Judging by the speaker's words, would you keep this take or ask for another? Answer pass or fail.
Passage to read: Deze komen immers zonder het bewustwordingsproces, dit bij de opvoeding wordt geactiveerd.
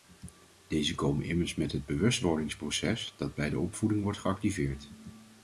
fail